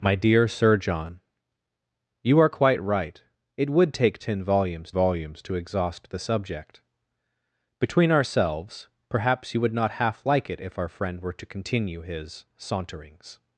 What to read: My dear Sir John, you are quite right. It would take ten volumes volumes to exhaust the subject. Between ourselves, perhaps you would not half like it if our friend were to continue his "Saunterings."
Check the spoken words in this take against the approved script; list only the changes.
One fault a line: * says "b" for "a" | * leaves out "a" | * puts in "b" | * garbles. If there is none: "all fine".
all fine